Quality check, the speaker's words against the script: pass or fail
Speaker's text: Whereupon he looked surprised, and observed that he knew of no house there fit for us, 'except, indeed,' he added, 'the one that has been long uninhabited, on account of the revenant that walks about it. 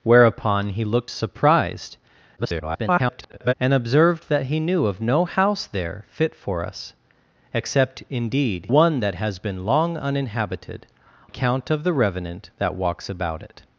fail